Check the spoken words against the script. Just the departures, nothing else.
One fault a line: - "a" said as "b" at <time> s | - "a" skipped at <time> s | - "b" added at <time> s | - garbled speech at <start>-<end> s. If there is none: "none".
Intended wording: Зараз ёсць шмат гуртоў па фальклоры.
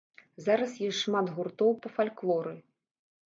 none